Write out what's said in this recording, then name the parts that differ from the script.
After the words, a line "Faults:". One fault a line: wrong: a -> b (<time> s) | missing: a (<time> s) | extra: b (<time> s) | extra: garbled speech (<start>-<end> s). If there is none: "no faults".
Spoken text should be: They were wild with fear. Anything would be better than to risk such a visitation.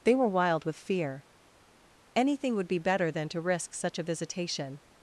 They were wild with fear. Anything would be better than to risk such a visitation.
Faults:
no faults